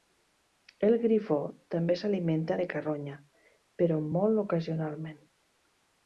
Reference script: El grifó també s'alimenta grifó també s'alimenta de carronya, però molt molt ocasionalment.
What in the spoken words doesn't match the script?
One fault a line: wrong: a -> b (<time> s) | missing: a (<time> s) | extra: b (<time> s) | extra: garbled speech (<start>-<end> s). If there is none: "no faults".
missing: grifó també s'alimenta (2.6 s)
missing: molt (4.4 s)